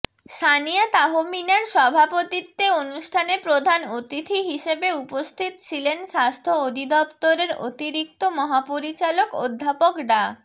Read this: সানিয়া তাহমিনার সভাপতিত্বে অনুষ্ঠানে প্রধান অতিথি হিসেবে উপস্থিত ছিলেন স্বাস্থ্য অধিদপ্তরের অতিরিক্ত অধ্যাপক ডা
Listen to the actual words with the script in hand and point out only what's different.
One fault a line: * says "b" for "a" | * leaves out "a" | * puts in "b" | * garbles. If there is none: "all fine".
* puts in "মহাপরিচালক"